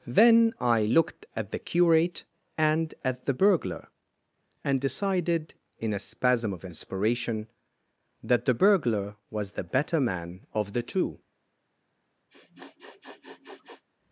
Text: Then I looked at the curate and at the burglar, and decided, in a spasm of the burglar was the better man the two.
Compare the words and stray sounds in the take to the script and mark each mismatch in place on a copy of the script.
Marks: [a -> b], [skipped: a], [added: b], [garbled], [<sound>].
Then I looked at the curate and at the burglar, and decided, in a spasm of [added: inspiration that] the burglar was the better man [added: of] the two. [sniff]